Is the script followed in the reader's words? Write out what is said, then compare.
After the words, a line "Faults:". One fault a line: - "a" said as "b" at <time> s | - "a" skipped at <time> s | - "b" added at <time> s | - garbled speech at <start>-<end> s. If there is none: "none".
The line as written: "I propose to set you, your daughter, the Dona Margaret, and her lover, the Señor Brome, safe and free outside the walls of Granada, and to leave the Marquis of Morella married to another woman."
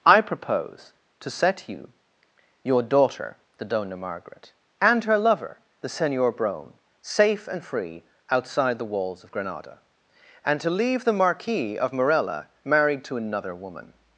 "I propose to set you, your daughter, the Dona Margaret, and her lover, the Señor Brome, safe and free outside the walls of Granada, and to leave the Marquis of Morella married to another woman."
Faults:
none